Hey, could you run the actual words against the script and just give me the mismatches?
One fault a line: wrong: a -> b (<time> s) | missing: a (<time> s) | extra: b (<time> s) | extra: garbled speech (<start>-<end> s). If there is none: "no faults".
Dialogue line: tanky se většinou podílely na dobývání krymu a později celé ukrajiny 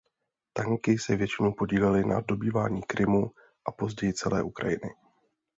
no faults